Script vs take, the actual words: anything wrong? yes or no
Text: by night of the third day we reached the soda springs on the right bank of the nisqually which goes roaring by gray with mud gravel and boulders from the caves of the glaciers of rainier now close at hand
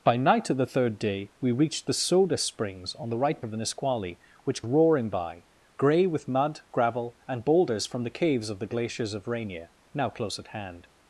yes